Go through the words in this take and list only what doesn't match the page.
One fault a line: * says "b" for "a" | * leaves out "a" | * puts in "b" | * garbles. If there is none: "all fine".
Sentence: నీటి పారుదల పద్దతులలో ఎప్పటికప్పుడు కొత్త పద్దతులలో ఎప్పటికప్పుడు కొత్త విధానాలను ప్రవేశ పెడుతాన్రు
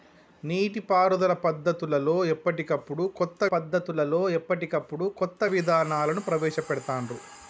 all fine